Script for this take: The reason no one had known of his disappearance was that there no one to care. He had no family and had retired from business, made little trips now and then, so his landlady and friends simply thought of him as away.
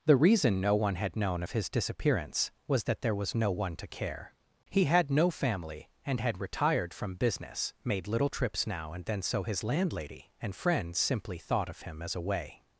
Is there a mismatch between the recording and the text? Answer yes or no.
yes